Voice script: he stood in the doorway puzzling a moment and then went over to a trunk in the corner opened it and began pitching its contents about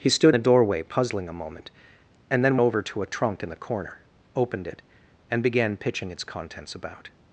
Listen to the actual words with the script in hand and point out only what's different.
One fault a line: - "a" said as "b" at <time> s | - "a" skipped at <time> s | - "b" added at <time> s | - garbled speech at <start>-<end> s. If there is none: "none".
- "in" skipped at 0.3 s
- "went" skipped at 2.6 s